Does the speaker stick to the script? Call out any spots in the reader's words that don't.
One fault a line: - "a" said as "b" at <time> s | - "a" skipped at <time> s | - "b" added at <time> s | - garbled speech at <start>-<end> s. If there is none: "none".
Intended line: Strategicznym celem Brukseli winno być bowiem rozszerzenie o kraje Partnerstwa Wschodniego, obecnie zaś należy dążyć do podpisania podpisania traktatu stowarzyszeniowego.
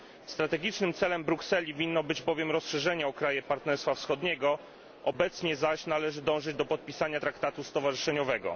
- "podpisania" skipped at 7.2 s